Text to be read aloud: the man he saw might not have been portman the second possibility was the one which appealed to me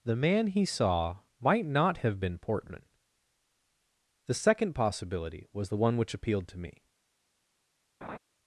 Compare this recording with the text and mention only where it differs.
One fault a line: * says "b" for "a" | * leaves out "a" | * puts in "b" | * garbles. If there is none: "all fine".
all fine